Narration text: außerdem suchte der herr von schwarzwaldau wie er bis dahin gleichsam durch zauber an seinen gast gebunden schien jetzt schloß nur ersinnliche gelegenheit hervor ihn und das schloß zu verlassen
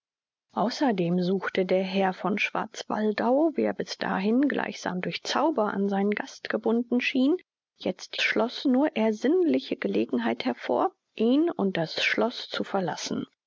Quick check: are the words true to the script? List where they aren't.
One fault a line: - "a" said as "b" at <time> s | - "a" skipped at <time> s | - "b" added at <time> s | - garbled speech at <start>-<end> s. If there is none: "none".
none